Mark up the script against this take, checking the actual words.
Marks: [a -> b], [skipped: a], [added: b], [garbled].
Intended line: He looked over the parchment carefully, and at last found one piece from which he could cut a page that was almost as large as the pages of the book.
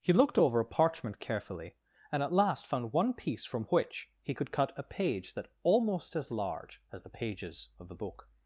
He looked over [the -> a] parchment carefully, and at last found one piece from which he could cut a page that [skipped: was] almost as large as the pages of the book.